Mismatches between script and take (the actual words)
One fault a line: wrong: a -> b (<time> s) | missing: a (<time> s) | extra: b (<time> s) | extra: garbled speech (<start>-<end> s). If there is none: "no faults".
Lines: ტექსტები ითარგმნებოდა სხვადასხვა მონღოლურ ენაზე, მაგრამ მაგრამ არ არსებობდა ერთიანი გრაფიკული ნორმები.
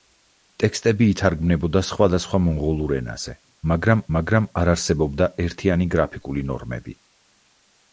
no faults